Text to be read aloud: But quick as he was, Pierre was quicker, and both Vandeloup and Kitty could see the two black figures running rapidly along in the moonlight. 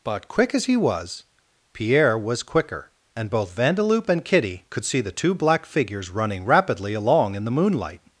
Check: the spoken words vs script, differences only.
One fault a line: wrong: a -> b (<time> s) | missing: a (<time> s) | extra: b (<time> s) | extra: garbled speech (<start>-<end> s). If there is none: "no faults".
no faults